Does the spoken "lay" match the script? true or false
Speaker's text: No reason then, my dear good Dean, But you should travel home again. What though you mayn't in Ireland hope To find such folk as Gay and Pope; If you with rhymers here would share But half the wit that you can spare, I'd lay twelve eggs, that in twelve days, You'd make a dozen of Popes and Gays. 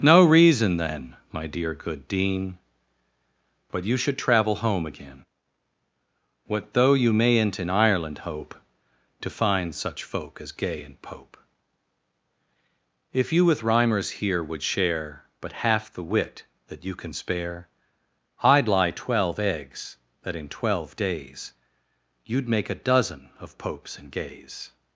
false